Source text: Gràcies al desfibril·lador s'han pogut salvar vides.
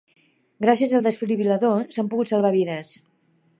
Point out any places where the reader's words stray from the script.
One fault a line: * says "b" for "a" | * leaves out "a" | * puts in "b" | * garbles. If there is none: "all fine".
all fine